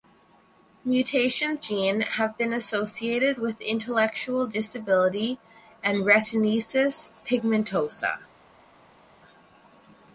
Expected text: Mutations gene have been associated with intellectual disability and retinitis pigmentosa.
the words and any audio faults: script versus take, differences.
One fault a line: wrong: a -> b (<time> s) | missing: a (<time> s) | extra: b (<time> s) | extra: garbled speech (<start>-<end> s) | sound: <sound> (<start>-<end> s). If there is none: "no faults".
no faults